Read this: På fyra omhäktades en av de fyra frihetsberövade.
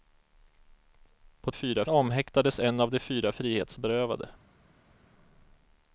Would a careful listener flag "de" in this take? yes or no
no